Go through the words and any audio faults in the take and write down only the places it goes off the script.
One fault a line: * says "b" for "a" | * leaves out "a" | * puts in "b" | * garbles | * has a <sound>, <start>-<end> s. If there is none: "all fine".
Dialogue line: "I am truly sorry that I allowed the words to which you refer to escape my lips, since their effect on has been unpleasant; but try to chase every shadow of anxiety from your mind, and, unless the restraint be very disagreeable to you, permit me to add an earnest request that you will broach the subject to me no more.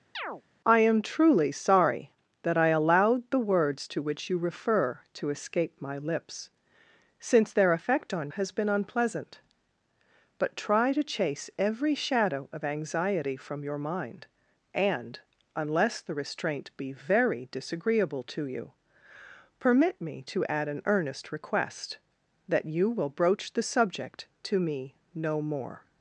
* has a chirp, 0.1-0.4 s